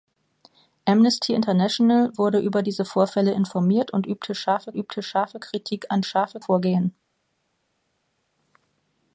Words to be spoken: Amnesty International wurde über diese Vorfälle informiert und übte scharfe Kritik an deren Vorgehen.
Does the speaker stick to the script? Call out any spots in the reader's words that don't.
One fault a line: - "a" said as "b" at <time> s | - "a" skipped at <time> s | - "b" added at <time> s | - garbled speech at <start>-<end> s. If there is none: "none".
- "übte scharfe" added at 4.8 s
- "deren" said as "scharfe" at 6.0 s